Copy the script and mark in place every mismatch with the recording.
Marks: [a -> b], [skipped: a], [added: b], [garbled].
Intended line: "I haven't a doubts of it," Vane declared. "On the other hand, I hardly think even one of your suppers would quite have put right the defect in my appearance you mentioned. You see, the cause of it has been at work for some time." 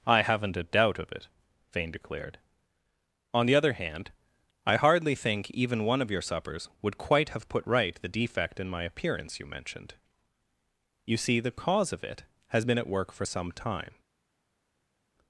"I haven't a [doubts -> doubt] of it," Vane declared. "On the other hand, I hardly think even one of your suppers would quite have put right the defect in my appearance you mentioned. You see, the cause of it has been at work for some time."